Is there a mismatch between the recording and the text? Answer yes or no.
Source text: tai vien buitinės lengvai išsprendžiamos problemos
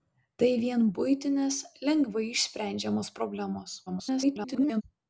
yes